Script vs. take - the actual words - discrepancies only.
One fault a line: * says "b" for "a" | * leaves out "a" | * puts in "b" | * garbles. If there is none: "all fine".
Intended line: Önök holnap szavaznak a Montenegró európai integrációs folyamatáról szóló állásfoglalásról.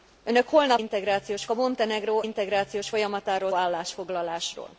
* says "integrációs" for "szavaznak"
* leaves out "európai"
* leaves out "szóló"